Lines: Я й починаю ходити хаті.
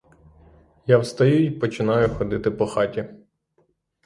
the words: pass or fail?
fail